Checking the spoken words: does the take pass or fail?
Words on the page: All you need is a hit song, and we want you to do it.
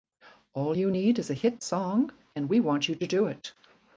pass